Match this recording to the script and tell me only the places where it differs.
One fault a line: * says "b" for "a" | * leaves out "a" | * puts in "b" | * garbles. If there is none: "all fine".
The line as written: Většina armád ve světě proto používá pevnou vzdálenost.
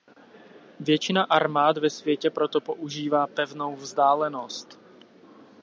all fine